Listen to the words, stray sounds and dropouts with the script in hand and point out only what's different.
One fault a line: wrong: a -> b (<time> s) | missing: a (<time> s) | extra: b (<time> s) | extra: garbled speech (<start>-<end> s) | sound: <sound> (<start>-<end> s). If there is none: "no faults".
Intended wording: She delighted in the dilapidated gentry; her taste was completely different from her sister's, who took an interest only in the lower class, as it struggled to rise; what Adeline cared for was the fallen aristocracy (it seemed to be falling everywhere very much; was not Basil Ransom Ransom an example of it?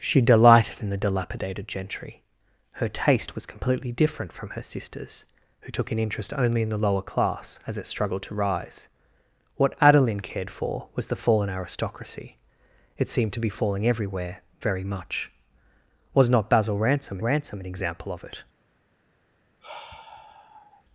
sound: sigh (19.6-20.8 s)